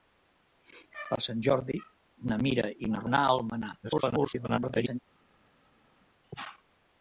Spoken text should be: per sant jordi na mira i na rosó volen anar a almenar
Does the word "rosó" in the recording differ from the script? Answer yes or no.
yes